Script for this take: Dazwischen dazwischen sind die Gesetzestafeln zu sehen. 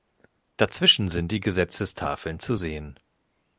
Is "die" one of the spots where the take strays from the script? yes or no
no